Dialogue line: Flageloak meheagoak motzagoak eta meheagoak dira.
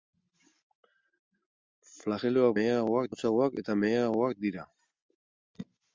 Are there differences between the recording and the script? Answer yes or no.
no